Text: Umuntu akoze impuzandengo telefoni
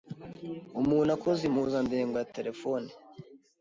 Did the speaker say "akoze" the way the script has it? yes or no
yes